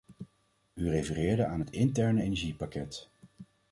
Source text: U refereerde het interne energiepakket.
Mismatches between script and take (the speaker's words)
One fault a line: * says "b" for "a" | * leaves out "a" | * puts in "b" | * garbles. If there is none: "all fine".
* puts in "aan"